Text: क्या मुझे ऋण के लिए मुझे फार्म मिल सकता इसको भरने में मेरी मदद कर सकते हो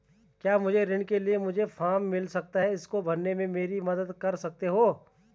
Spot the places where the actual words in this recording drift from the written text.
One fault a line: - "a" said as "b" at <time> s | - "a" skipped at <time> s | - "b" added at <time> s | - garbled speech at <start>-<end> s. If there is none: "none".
- "है" added at 2.6 s